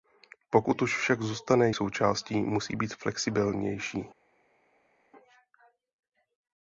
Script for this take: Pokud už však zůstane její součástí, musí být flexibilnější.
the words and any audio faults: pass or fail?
fail